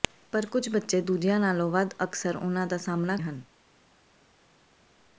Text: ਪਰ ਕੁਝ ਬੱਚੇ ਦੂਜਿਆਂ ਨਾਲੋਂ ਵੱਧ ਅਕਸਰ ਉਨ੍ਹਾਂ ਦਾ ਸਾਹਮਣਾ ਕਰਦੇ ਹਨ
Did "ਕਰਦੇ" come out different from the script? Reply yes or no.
yes